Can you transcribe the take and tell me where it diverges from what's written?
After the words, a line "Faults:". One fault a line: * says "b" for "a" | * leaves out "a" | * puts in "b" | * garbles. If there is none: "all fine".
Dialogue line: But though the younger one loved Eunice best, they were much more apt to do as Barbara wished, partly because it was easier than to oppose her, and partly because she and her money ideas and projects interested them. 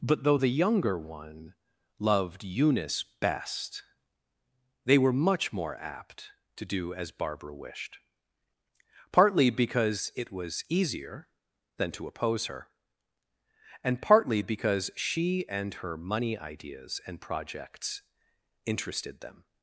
But though the younger one loved Eunice best, they were much more apt to do as Barbara wished, partly because it was easier than to oppose her, and partly because she and her money ideas and projects interested them.
Faults:
all fine